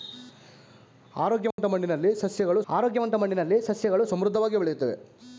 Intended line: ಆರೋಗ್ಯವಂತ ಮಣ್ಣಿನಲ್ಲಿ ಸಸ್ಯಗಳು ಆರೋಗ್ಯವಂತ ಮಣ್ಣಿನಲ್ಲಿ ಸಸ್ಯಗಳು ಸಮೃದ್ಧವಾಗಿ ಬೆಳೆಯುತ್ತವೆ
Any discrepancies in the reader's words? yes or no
no